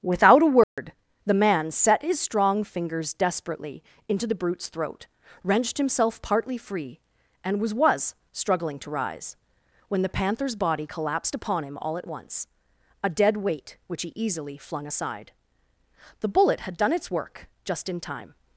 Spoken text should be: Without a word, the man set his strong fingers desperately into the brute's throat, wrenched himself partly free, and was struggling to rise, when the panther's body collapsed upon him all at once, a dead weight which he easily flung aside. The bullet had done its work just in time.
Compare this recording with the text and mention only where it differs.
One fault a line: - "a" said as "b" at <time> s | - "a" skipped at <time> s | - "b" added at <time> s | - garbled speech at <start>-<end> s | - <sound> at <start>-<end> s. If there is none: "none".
- dropout at 0.6-0.8 s
- "was" added at 7.7 s